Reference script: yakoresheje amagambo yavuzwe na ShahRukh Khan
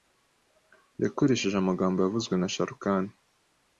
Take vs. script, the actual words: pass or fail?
pass